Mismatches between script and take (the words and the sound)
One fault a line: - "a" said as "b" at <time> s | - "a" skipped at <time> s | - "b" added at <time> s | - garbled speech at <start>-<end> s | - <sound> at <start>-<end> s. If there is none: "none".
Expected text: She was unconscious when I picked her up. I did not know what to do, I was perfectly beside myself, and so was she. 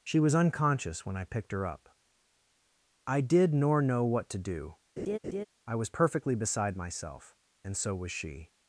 - "not" said as "nor" at 3.5 s
- laugh at 5.0-5.4 s